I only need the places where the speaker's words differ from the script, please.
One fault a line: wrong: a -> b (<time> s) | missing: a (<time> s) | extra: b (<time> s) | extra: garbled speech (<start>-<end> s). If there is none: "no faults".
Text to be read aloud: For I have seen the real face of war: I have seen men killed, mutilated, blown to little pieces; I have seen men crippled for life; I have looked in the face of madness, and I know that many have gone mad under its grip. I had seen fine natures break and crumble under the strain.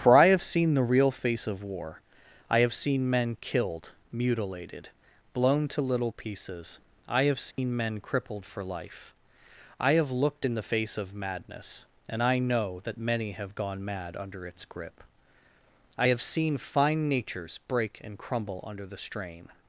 wrong: had -> have (16.1 s)